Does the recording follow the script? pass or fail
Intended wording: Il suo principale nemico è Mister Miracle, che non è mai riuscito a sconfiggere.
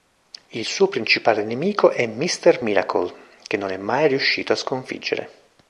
pass